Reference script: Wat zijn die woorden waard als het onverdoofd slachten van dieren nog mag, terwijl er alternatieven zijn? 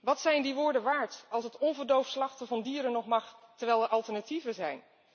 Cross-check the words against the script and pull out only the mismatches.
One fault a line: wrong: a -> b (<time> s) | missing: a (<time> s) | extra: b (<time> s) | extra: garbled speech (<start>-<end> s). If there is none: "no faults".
no faults